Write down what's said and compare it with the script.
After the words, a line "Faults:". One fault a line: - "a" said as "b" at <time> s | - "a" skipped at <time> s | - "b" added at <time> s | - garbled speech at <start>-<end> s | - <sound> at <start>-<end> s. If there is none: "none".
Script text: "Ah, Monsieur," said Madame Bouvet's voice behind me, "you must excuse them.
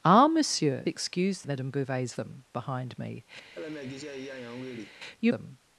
"Ah, Monsieur," excuse Madame Bouvet's them behind me, "you them.
Faults:
- "said" said as "excuse" at 0.9 s
- "voice" said as "them" at 2.1 s
- laugh at 3.5-5.0 s
- "must excuse" skipped at 5.3 s